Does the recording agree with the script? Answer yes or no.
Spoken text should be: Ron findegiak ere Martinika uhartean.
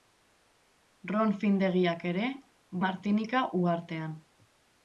yes